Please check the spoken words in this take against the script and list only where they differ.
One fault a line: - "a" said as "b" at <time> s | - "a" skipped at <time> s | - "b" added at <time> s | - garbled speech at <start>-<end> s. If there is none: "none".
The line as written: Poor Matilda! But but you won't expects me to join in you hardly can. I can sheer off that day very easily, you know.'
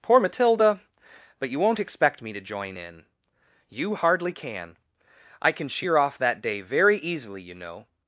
- "but" skipped at 1.5 s
- "expects" said as "expect" at 1.8 s